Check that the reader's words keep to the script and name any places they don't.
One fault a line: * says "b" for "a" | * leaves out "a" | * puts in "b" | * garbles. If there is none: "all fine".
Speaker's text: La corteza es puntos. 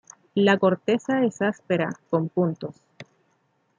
* puts in "áspera con"